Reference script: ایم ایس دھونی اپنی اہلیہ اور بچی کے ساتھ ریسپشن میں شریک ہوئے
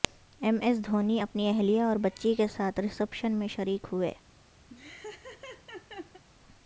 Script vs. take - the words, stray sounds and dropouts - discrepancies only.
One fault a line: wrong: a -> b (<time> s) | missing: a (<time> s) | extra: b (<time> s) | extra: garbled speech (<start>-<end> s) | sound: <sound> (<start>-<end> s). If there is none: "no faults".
sound: laugh (4.7-6.2 s)